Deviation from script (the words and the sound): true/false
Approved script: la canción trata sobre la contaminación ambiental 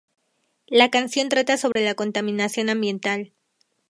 true